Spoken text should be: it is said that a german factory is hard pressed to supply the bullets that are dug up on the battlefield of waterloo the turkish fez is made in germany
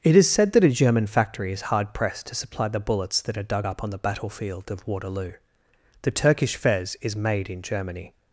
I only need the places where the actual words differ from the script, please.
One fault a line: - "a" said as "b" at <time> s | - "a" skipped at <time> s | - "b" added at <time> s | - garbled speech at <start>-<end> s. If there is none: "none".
none